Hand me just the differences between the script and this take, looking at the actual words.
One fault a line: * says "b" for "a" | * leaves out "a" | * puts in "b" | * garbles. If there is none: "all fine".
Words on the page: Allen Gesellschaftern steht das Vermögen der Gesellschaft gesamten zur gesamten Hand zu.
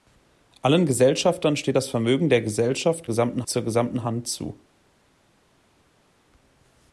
all fine